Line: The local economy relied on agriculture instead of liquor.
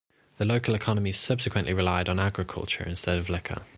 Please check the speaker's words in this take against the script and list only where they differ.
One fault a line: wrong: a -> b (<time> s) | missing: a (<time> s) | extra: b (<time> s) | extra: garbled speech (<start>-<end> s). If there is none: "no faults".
extra: subsequently (1.1 s)